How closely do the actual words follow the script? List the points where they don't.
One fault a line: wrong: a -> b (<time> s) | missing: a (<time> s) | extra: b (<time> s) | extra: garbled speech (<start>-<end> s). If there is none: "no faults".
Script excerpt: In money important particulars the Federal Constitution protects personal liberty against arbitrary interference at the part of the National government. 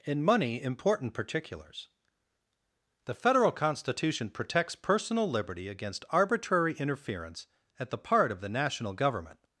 no faults